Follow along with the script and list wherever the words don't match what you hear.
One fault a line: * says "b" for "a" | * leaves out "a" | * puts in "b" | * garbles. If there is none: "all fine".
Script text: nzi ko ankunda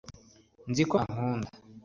all fine